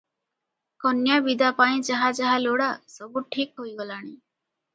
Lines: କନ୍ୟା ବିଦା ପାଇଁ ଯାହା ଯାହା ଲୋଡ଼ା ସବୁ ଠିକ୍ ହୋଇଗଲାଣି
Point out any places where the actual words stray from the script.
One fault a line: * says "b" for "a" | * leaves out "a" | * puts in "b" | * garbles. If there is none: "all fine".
all fine